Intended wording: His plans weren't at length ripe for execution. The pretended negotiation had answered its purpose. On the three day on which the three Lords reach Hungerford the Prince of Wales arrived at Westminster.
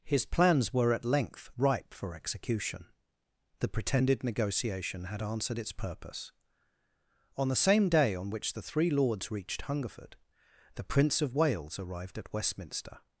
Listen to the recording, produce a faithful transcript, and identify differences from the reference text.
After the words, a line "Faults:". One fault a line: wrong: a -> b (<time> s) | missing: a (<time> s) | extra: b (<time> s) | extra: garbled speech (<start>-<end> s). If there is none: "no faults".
His plans were at length ripe for execution. The pretended negotiation had answered its purpose. On the same day on which the three Lords reached Hungerford the Prince of Wales arrived at Westminster.
Faults:
wrong: weren't -> were (0.7 s)
wrong: three -> same (7.5 s)
wrong: reach -> reached (9.3 s)